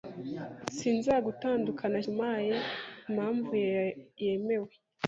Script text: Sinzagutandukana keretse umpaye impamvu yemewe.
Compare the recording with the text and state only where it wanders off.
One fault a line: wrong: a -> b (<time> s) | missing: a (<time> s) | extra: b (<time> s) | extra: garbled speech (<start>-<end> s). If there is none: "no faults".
missing: keretse (2.0 s)